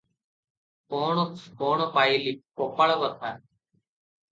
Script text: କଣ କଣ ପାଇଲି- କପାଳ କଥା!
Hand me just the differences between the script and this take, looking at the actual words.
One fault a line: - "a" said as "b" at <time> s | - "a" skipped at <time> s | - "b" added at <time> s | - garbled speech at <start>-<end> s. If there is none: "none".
none